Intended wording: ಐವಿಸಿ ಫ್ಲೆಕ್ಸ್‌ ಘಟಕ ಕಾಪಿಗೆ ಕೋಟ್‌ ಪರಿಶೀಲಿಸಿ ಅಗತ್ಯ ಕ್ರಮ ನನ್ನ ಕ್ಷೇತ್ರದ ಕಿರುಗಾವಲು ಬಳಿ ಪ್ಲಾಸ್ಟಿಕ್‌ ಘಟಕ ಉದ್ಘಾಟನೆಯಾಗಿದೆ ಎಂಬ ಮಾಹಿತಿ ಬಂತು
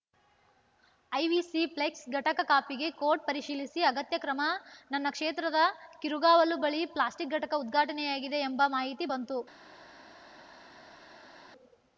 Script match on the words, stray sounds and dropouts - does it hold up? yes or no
yes